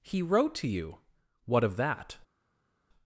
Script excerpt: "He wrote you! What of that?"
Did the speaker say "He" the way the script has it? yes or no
yes